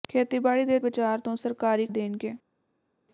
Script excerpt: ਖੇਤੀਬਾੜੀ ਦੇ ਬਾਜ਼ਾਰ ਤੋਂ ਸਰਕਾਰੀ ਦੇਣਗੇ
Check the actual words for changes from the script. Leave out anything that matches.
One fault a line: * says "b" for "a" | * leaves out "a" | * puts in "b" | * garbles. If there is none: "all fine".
all fine